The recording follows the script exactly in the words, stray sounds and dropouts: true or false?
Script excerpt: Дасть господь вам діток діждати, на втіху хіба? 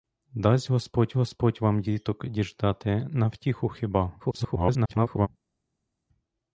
false